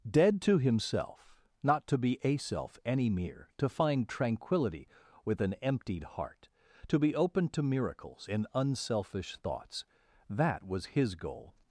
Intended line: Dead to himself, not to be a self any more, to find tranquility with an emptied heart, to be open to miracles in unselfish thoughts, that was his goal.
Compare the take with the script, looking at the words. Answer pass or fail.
fail